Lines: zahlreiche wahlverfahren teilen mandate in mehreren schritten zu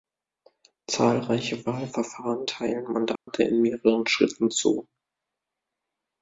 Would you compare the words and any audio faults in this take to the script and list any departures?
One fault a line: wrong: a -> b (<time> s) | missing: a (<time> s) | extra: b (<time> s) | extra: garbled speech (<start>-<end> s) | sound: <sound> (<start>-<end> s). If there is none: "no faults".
sound: dropout (3.2-3.3 s)